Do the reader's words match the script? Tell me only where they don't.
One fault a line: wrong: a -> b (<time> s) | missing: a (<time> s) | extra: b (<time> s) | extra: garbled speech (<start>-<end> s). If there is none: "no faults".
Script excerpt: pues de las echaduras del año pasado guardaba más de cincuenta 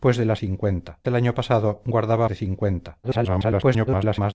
wrong: echaduras -> cincuenta (0.4 s)
missing: más (2.3 s)
extra: garbled speech (3.0-4.3 s)